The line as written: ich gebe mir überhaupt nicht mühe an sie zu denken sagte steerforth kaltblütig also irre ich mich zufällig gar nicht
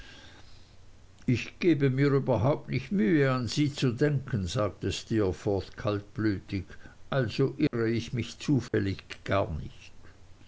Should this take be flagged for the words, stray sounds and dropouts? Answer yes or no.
yes